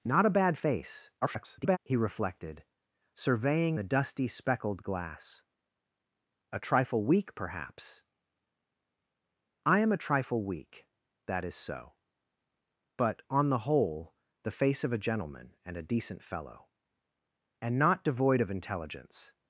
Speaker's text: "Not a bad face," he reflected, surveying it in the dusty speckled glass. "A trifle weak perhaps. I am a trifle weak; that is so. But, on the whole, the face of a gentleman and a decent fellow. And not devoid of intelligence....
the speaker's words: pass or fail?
fail